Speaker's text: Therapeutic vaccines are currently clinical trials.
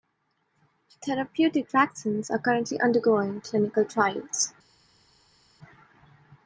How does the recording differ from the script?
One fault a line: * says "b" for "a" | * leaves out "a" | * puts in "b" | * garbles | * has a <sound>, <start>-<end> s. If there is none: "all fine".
* puts in "undergoing"